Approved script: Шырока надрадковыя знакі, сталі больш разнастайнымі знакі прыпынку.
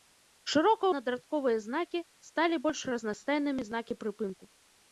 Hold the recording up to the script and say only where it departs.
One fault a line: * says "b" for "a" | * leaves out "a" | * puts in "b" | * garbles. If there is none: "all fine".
all fine